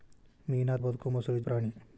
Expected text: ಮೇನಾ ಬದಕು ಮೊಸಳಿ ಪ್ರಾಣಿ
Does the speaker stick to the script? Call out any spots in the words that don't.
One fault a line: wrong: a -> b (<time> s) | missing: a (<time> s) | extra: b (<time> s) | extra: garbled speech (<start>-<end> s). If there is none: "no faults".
no faults